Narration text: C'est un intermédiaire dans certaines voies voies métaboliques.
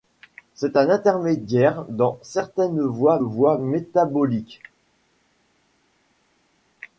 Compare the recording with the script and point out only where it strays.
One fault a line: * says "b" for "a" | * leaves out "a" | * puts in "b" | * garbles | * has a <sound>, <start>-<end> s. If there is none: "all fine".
all fine